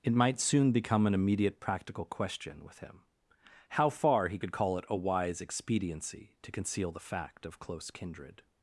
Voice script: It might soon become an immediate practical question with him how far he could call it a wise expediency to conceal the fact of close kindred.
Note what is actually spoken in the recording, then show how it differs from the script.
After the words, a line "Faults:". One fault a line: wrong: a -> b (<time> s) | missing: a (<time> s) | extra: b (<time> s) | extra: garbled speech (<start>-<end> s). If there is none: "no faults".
It might soon become an immediate practical question with him how far he could call it a wise expediency to conceal the fact of close kindred.
Faults:
no faults